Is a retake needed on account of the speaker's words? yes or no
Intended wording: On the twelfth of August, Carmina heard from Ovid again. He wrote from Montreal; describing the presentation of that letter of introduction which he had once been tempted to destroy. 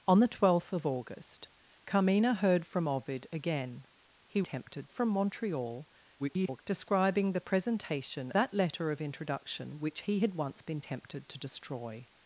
yes